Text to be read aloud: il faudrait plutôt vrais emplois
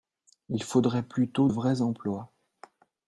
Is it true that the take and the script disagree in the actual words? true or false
false